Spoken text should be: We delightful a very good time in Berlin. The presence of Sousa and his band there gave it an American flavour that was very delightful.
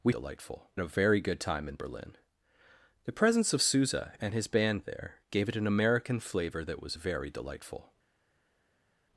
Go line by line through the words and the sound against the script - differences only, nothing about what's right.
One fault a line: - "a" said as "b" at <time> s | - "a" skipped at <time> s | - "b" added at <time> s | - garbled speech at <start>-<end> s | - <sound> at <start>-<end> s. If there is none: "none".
none